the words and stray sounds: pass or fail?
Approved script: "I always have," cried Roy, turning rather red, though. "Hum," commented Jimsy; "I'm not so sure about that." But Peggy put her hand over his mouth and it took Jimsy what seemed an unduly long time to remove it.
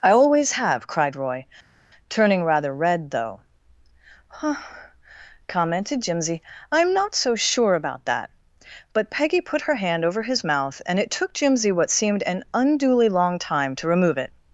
fail